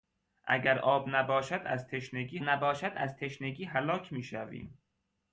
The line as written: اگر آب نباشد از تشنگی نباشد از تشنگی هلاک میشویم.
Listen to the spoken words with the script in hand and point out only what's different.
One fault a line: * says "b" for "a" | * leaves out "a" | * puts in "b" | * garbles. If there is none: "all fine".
all fine